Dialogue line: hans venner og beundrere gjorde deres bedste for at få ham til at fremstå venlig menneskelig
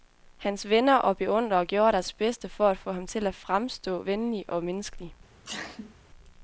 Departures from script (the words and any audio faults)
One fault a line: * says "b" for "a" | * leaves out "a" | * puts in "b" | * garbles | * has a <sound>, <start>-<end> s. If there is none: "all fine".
* puts in "og"
* has a sneeze, 5.4-5.9 s